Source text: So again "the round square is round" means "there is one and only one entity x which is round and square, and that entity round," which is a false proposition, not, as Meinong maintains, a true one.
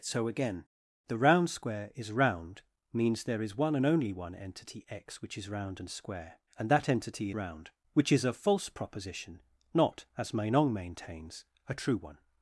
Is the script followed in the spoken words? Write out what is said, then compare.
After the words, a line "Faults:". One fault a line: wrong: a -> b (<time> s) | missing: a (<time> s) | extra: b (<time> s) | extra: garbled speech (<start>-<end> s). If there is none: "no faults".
So again "the round square is round" means "there is one and only one entity x which is round and square, and that entity round," which is a false proposition, not, as Meinong maintains, a true one.
Faults:
no faults